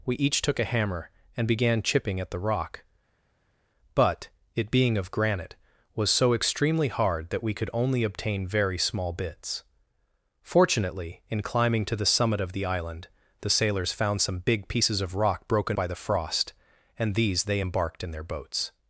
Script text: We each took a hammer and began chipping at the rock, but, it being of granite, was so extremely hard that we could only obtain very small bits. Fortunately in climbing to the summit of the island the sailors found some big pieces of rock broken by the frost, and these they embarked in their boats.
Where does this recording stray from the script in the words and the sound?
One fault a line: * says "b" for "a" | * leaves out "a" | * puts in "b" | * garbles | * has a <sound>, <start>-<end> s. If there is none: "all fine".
all fine